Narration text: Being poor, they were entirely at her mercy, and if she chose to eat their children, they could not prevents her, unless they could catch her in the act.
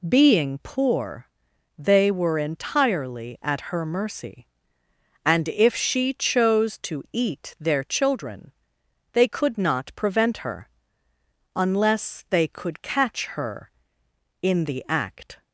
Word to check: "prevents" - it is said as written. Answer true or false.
false